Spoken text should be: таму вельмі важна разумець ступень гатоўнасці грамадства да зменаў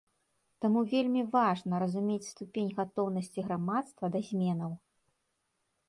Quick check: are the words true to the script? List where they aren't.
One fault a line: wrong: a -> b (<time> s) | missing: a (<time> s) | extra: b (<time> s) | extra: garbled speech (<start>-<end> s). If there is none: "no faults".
no faults